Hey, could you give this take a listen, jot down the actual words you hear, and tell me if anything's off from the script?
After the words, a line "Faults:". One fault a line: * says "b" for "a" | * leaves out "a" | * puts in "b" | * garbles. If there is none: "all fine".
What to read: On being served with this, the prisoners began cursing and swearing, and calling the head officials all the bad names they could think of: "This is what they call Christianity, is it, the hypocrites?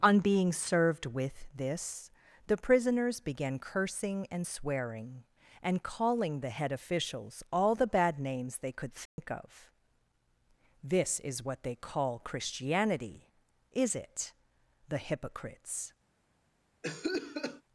On being served with this, the prisoners began cursing and swearing, and calling the head officials all the bad names they could think of: "This is what they call Christianity, is it, the hypocrites?
Faults:
all fine